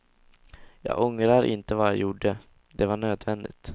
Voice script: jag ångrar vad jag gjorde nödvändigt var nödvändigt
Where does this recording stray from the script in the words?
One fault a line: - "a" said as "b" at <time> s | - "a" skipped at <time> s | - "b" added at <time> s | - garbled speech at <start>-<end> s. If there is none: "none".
- "inte" added at 1.4 s
- "nödvändigt" said as "det" at 2.7 s